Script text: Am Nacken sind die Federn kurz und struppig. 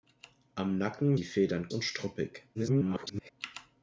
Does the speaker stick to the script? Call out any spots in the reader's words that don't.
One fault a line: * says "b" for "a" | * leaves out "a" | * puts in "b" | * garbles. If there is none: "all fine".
* leaves out "sind"
* leaves out "kurz"
* garbles